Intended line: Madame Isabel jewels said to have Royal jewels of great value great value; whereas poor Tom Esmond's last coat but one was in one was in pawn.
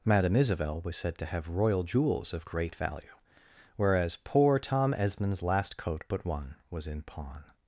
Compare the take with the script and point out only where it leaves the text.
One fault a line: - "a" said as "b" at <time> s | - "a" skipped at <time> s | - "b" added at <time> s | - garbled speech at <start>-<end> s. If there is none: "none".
- "jewels" said as "was" at 0.8 s
- "great value" skipped at 3.2 s
- "one was in" skipped at 7.0 s